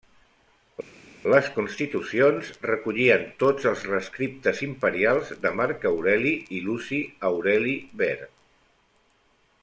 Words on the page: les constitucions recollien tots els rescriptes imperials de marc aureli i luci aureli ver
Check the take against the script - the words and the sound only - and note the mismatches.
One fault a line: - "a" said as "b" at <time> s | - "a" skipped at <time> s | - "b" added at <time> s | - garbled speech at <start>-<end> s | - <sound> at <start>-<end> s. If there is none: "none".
none